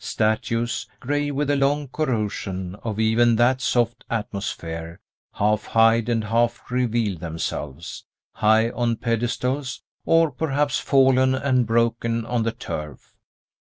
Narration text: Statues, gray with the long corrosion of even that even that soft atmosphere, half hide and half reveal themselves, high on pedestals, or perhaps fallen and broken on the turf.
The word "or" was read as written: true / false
true